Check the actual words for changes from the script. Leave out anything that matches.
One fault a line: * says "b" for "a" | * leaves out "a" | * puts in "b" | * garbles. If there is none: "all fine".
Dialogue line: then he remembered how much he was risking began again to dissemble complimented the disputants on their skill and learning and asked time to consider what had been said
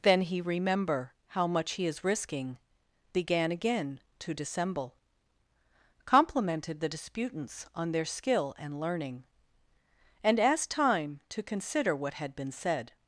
* says "remember" for "remembered"
* says "is" for "was"